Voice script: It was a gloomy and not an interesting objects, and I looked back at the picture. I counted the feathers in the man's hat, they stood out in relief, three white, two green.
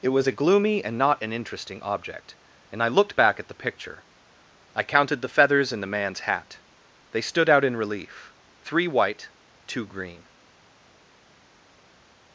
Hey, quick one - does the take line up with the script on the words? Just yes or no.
no